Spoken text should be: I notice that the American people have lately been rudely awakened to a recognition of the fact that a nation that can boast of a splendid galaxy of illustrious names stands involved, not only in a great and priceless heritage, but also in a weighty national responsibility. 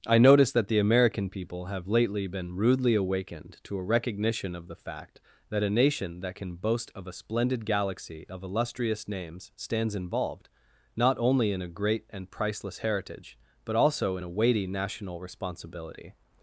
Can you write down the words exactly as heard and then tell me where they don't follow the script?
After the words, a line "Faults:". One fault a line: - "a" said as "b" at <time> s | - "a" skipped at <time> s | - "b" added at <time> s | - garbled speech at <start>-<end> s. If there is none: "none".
I notice that the American people have lately been rudely awakened to a recognition of the fact that a nation that can boast of a splendid galaxy of illustrious names stands involved, not only in a great and priceless heritage, but also in a weighty national responsibility.
Faults:
none